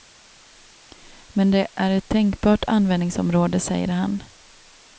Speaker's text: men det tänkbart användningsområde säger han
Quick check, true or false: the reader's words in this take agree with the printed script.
false